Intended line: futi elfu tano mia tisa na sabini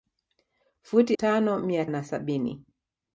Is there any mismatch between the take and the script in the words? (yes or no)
yes